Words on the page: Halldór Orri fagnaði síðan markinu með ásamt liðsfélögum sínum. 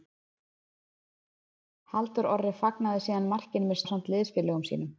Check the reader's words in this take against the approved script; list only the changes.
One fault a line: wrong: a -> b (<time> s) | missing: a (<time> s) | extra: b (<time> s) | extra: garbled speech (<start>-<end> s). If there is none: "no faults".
no faults